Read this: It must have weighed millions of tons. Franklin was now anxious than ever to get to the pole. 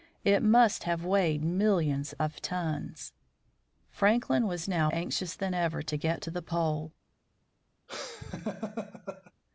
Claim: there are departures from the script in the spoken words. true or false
false